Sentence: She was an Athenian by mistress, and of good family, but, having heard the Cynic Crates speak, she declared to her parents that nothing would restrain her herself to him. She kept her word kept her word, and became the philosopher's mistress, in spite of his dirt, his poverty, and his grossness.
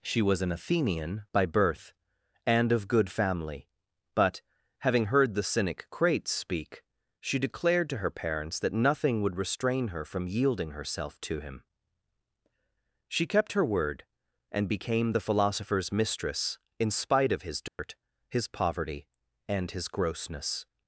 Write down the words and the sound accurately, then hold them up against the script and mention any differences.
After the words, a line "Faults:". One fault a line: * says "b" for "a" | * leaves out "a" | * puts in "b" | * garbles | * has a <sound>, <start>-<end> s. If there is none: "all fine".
She was an Athenian by birth, and of good family, but, having heard the Cynic Crates speak, she declared to her parents that nothing would restrain her from yielding herself to him. She kept her word, and became the philosopher's mistress, in spite of his dirt, his poverty, and his grossness.
Faults:
* says "birth" for "mistress"
* puts in "from yielding"
* leaves out "kept her word"
* has a dropout, 17.7-17.8 s